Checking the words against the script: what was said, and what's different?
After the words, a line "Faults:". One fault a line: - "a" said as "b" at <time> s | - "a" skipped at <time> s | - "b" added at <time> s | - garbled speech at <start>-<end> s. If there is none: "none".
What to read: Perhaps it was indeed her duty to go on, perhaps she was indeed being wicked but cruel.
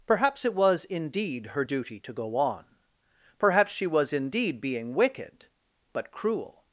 Perhaps it was indeed her duty to go on, perhaps she was indeed being wicked but cruel.
Faults:
none